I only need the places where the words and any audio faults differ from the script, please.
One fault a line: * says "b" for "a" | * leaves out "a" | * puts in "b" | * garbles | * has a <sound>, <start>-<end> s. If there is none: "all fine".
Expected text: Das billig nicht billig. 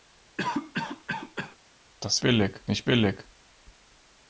* has a cough, 0.4-1.6 s